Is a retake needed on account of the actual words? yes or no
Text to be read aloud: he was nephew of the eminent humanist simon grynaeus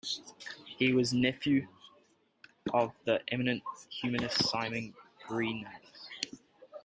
no